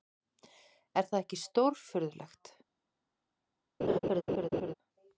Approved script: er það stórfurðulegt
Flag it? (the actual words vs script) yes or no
yes